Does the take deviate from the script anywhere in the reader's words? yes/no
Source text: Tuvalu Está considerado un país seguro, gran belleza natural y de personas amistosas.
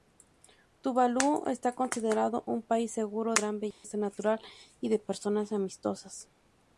no